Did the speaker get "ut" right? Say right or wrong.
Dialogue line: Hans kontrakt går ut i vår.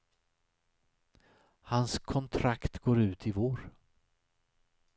right